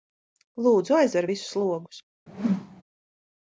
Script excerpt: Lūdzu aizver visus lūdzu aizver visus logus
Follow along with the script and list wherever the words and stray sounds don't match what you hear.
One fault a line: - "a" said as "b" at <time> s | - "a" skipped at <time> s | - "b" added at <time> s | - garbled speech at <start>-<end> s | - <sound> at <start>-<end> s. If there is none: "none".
- "lūdzu aizver visus" skipped at 1.6 s
- whoosh at 2.3-2.8 s